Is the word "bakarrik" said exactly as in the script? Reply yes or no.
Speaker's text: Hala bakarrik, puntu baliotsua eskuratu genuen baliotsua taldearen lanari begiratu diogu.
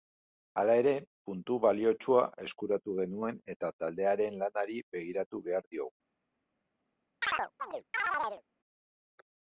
no